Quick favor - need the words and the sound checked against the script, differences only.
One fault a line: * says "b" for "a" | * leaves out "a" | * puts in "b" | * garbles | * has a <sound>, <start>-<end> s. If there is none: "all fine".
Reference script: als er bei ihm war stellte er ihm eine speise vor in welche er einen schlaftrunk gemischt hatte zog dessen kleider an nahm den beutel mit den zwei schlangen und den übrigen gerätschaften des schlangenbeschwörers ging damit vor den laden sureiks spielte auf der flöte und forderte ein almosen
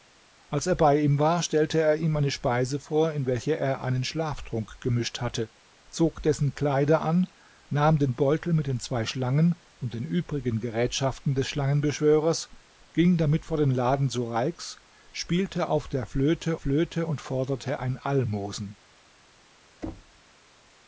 * puts in "flöte"
* has a thud, 19.8-20.2 s